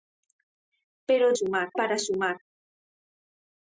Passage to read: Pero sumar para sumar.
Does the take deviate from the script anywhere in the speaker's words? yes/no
no